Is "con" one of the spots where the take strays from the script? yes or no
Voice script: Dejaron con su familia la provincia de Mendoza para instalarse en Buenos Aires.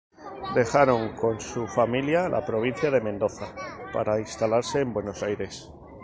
no